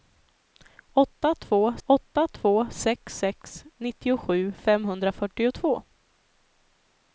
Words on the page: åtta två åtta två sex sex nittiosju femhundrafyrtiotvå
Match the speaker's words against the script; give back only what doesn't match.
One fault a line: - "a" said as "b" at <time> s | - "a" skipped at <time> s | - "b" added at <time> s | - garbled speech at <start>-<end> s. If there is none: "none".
none